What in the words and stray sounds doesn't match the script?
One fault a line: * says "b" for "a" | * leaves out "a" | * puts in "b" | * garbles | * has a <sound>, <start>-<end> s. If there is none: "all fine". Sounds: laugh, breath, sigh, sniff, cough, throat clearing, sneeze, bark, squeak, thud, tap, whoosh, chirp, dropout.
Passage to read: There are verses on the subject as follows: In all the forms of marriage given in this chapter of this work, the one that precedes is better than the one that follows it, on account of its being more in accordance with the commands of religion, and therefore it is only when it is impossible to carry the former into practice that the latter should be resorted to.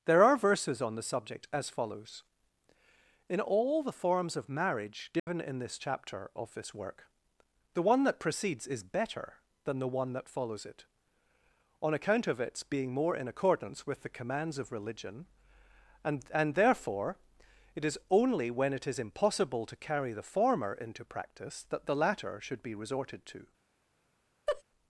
* has a dropout, 5.2-5.3 s
* puts in "and"
* has a laugh, 24.5-24.6 s